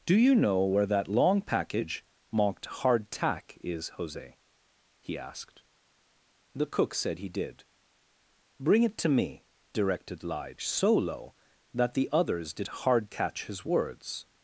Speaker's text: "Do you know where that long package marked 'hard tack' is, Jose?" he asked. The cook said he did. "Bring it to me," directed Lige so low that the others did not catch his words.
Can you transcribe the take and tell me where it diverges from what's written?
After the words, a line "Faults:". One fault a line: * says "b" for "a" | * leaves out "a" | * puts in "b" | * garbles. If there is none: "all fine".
"Do you know where that long package marked 'hard tack' is, Jose?" he asked. The cook said he did. "Bring it to me," directed Lige so low that the others did hard catch his words.
Faults:
* says "hard" for "not"